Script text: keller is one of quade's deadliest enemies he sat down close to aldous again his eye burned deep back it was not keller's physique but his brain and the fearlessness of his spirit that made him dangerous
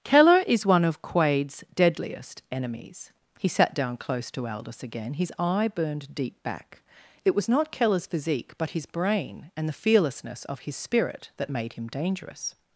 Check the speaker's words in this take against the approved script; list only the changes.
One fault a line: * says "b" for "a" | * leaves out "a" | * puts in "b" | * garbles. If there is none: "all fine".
all fine